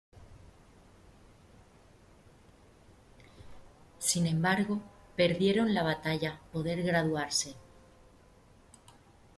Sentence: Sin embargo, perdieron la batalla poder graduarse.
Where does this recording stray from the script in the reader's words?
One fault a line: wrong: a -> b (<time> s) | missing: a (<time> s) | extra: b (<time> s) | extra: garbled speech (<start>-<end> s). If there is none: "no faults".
no faults